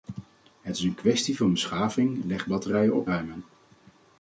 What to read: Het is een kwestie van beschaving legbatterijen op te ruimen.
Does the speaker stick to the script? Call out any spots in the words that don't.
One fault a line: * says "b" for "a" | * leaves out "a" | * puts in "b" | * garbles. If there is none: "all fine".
* leaves out "te"